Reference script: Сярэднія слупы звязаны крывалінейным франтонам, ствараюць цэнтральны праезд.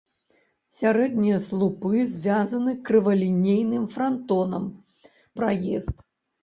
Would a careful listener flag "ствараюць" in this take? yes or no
yes